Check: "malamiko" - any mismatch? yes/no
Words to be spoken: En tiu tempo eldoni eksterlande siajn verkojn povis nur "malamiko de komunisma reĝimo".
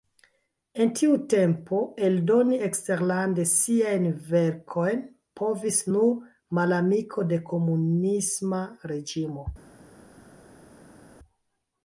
no